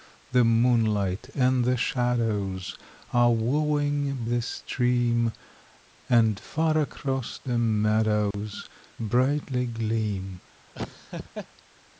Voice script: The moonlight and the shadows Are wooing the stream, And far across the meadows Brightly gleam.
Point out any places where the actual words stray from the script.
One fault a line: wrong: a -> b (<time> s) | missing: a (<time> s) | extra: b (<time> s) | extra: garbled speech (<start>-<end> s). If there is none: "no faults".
no faults